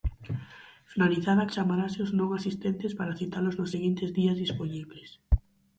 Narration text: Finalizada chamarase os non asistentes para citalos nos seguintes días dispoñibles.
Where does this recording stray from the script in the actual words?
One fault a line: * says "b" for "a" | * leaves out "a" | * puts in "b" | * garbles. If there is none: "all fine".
all fine